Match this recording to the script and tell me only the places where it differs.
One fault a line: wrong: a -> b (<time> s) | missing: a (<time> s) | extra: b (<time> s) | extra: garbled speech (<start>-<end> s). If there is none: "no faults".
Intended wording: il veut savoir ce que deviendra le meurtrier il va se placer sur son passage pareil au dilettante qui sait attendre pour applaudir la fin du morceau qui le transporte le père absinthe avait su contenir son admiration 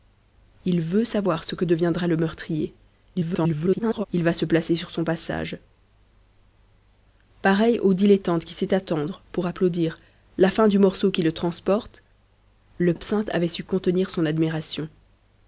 extra: garbled speech (3.2-4.0 s)
missing: père (12.9 s)